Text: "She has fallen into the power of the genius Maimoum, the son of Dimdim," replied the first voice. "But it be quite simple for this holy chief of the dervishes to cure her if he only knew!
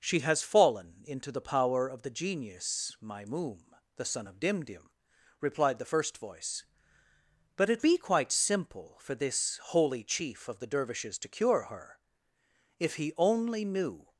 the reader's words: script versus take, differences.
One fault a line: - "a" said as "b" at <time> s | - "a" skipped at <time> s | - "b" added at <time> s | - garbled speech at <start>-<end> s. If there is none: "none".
none